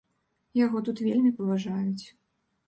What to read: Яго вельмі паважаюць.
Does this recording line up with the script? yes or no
no